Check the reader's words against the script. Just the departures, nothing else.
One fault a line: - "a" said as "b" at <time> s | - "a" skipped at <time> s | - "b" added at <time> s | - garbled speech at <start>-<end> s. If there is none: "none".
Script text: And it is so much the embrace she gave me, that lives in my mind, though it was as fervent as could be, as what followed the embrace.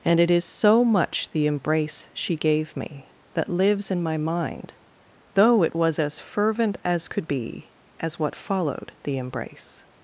none